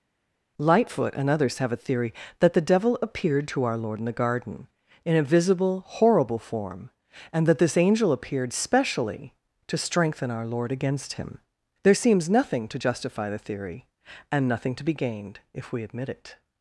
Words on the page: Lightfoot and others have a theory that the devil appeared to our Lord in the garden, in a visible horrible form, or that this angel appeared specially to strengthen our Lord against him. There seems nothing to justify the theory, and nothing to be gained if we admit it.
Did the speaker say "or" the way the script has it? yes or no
no